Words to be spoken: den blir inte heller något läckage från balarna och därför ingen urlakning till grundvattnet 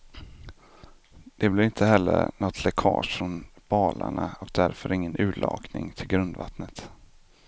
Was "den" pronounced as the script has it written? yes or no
no